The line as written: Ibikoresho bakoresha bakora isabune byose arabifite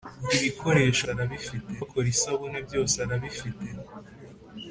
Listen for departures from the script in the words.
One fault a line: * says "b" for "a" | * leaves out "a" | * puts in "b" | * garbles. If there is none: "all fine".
* says "arabifite" for "bakoresha"